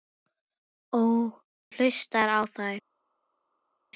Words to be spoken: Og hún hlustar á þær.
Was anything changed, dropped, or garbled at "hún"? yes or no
yes